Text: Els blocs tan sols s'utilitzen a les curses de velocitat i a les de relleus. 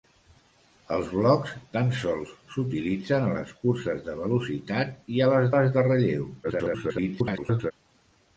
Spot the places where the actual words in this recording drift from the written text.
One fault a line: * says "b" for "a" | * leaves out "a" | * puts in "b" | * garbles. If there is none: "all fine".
* puts in "les"
* garbles